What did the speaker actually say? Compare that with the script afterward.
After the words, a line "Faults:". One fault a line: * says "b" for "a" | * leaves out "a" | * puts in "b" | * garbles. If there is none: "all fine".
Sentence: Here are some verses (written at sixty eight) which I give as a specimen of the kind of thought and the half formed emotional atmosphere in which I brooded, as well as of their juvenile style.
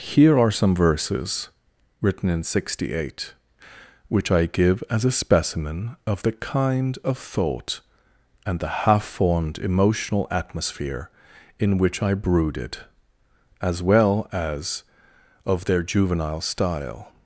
Here are some verses (written in sixty eight) which I give as a specimen of the kind of thought and the half formed emotional atmosphere in which I brooded, as well as of their juvenile style.
Faults:
* says "in" for "at"